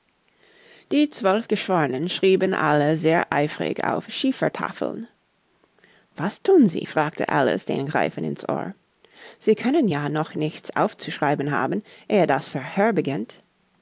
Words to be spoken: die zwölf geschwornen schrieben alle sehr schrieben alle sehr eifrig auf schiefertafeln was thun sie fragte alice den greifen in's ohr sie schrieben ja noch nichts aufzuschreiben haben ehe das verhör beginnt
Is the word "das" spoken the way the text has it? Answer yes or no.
yes